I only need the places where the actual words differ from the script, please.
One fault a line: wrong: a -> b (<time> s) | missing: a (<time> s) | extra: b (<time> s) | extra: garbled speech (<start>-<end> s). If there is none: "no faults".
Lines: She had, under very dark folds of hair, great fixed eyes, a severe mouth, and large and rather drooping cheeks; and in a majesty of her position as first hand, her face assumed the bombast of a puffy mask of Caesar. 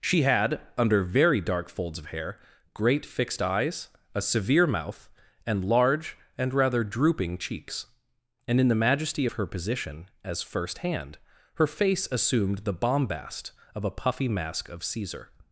wrong: a -> the (8.7 s)